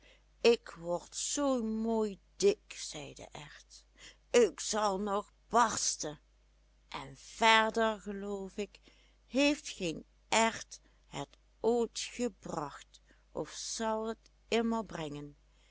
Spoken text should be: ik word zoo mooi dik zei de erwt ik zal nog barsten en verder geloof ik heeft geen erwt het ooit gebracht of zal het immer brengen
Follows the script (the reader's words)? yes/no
yes